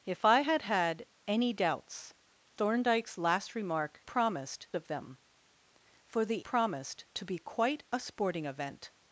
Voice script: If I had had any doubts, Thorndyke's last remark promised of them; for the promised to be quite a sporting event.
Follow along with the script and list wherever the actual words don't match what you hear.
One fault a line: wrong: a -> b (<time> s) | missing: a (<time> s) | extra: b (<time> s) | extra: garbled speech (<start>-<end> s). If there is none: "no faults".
no faults